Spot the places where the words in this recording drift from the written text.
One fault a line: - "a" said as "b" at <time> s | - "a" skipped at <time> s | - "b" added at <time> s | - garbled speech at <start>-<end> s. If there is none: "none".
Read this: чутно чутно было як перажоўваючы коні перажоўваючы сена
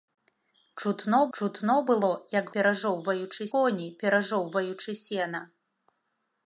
none